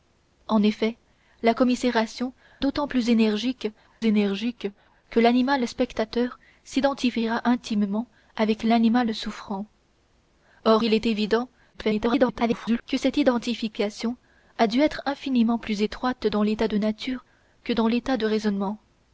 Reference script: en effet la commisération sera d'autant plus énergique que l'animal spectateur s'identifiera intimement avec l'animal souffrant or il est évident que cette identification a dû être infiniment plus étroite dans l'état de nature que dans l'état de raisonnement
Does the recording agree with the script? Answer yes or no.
no